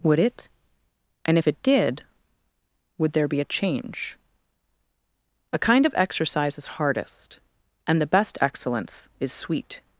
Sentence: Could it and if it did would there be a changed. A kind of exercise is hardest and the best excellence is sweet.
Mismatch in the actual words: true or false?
true